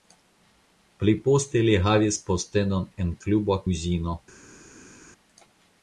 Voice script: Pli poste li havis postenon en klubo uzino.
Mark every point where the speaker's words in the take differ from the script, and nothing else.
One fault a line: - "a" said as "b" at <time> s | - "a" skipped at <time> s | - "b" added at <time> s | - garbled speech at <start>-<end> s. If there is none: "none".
none